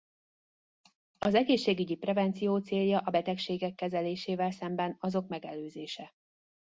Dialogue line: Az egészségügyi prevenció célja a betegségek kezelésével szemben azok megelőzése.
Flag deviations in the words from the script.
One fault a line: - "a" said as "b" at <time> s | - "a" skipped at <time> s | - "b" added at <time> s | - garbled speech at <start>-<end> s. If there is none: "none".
none